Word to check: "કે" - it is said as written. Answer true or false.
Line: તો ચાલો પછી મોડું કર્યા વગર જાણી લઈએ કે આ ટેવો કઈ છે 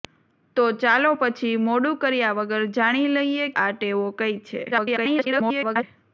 false